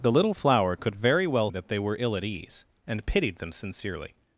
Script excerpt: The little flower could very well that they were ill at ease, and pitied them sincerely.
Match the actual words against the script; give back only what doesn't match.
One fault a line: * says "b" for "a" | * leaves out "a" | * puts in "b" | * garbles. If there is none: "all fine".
all fine